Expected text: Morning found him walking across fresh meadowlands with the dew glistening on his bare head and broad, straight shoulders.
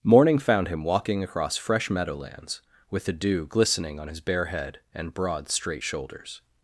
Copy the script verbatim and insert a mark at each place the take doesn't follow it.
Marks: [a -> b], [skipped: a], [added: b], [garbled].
Morning found him walking across fresh meadowlands with the dew glistening on his bare head and broad, straight shoulders.